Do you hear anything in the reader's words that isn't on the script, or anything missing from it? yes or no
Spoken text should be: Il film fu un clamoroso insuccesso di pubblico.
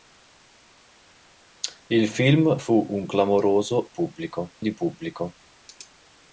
yes